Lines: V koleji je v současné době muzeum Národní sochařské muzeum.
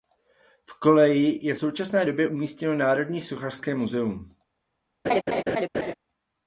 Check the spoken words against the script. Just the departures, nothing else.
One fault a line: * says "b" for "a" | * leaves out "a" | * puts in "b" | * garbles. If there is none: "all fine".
* says "umístěno" for "muzeum"